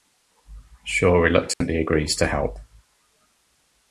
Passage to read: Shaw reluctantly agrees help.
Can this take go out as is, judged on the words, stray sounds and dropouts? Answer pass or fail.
fail